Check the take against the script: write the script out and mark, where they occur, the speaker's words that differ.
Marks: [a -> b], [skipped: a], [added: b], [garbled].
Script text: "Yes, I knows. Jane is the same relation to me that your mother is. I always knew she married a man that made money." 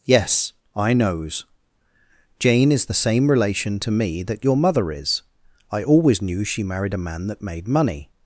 "Yes, I knows. Jane is the same relation to me that your mother is. I always knew she married a man that made money."